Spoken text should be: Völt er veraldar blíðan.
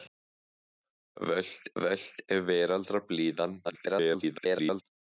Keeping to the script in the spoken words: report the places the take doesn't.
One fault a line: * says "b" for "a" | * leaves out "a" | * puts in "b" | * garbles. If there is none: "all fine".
* puts in "völt"
* garbles